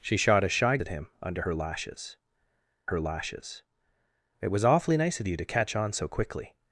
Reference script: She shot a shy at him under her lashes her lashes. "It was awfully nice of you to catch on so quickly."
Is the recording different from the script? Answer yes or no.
no